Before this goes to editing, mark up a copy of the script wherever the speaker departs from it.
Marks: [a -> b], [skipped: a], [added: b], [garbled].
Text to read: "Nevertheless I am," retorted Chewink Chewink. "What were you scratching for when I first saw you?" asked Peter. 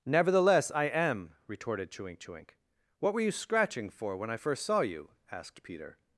"Nevertheless I am," retorted Chewink Chewink. "What were you scratching for when I first saw you?" asked Peter.